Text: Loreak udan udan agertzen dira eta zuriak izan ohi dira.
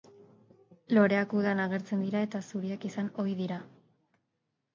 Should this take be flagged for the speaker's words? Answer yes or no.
yes